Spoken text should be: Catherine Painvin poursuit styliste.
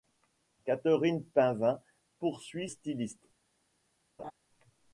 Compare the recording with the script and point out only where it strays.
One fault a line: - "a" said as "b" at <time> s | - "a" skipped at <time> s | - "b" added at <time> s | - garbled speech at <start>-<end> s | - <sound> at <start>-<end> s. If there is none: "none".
- laugh at 4.2-4.3 s